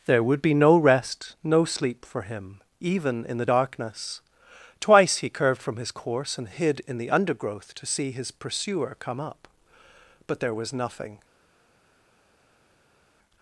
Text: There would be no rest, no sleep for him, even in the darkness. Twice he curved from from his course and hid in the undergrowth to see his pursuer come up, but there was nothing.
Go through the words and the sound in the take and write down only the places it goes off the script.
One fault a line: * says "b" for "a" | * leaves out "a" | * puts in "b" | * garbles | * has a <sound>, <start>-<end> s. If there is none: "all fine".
* leaves out "from"